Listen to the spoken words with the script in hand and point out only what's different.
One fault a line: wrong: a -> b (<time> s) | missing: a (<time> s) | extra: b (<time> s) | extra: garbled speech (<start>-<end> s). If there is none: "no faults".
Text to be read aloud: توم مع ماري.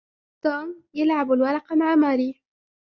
extra: يلعب الورق (0.9 s)